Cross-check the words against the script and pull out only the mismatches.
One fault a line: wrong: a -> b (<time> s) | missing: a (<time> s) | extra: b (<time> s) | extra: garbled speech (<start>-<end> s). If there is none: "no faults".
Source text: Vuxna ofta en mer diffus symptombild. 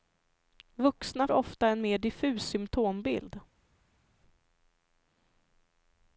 no faults